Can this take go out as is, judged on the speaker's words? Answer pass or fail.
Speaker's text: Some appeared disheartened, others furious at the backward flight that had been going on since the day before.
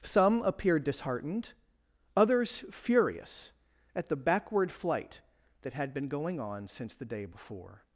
pass